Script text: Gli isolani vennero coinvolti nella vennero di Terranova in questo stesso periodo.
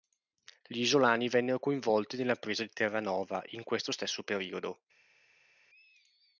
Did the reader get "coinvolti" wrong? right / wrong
right